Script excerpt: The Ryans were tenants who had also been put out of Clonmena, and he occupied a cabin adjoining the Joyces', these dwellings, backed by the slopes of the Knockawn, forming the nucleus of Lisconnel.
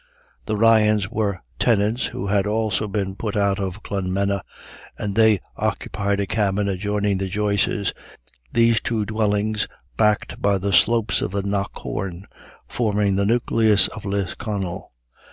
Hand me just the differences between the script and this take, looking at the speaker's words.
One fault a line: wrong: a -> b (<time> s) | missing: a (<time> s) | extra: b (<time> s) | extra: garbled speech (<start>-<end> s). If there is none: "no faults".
wrong: he -> they (5.1 s)
extra: two (8.8 s)